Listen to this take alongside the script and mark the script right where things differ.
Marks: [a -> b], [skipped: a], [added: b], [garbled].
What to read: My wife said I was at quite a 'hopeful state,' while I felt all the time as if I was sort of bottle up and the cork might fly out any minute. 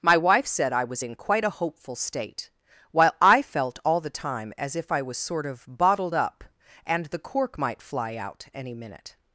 My wife said I was [at -> in] quite a 'hopeful state,' while I felt all the time as if I was sort of [bottle -> bottled] up and the cork might fly out any minute.